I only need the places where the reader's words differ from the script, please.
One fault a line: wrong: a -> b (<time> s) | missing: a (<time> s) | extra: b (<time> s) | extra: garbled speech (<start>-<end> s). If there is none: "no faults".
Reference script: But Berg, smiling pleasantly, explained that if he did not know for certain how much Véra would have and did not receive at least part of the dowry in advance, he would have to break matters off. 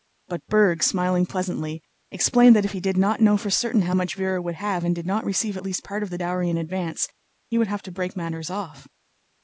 no faults